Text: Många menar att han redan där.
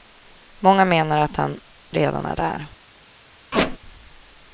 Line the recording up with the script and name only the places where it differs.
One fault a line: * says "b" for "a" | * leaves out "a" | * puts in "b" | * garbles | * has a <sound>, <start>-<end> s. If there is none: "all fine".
* puts in "är"
* has a squeak, 3.5-3.8 s